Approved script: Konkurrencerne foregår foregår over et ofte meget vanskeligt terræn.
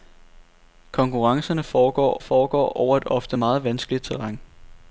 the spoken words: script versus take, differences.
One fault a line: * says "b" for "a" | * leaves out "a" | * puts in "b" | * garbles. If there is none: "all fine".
all fine